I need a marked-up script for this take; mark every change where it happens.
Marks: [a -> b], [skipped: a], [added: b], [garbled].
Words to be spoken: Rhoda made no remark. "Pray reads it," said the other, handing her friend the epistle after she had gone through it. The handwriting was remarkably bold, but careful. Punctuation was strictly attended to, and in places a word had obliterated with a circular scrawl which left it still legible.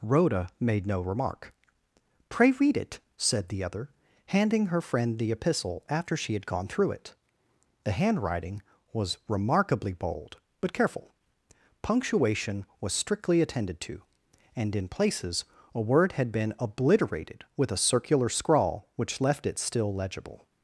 Rhoda made no remark. "Pray [reads -> read] it," said the other, handing her friend the epistle after she had gone through it. The handwriting was remarkably bold, but careful. Punctuation was strictly attended to, and in places a word had [added: been] obliterated with a circular scrawl which left it still legible.